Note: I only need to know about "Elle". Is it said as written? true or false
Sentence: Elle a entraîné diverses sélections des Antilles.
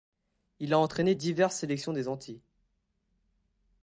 false